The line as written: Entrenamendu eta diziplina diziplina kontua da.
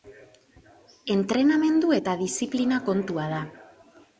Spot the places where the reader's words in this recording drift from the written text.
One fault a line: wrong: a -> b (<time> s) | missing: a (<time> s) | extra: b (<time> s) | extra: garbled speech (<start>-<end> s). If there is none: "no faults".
missing: diziplina (2.8 s)